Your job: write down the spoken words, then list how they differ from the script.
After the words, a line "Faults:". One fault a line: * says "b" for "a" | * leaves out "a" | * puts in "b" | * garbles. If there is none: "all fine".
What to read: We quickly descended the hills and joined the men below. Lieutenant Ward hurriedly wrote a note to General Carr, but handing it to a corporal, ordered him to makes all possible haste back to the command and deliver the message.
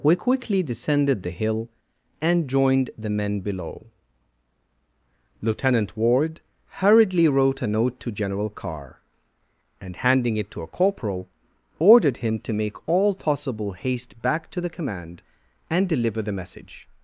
We quickly descended the hill and joined the men below. Lieutenant Ward hurriedly wrote a note to General Carr, and handing it to a corporal, ordered him to make all possible haste back to the command and deliver the message.
Faults:
* says "hill" for "hills"
* says "and" for "but"
* says "make" for "makes"